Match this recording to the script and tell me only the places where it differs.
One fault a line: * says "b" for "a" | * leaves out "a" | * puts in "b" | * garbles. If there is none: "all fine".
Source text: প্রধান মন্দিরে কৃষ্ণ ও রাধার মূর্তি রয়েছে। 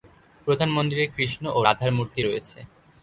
all fine